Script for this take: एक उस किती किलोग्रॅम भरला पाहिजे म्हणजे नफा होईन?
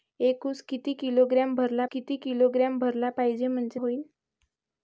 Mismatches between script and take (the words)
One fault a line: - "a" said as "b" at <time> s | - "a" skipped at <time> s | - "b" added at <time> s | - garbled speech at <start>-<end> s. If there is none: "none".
- "किती किलोग्रॅम भरला" added at 1.8 s
- "नफा" skipped at 3.8 s